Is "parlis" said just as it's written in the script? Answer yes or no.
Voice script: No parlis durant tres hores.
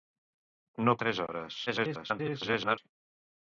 no